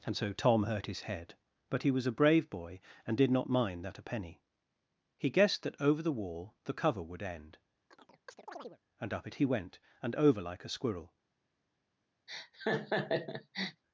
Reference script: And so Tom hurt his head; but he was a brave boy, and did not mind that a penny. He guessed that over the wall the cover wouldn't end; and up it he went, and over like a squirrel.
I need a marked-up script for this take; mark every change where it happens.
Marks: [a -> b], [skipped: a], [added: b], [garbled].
And so Tom hurt his head; but he was a brave boy, and did not mind that a penny. He guessed that over the wall the cover [wouldn't -> would] end; and up it he went, and over like a squirrel.